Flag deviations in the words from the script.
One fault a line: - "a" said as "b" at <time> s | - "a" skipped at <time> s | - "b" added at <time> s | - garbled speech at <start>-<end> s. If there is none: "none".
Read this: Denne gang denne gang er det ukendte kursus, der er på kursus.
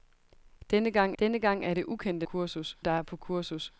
none